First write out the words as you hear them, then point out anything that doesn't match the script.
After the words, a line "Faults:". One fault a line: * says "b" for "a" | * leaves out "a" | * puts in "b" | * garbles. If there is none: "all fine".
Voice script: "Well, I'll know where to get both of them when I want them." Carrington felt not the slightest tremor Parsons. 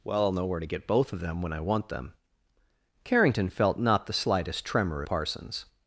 "Well, I'll know where to get both of them when I want them." Carrington felt not the slightest tremor Parsons.
Faults:
all fine